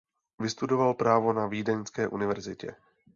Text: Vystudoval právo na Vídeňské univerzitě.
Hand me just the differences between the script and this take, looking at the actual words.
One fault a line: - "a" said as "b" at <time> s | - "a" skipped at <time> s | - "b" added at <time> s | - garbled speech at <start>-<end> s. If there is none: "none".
none